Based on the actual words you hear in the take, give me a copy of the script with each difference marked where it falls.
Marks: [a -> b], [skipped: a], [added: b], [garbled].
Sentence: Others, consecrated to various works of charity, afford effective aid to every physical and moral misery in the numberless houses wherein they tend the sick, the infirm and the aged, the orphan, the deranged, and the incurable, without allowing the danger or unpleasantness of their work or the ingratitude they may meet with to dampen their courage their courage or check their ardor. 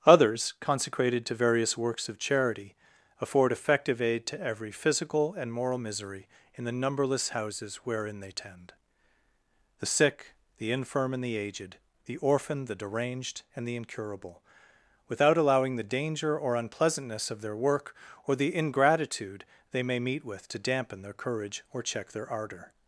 Others, consecrated to various works of charity, afford effective aid to every physical and moral misery in the numberless houses wherein they tend the sick, the infirm and the aged, the orphan, the deranged, and the incurable, without allowing the danger or unpleasantness of their work or the ingratitude they may meet with to dampen their courage [skipped: their courage] or check their ardor.